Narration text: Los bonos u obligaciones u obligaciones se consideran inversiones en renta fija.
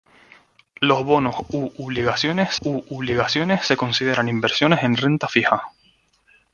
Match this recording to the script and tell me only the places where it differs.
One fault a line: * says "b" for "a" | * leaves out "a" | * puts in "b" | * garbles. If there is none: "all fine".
all fine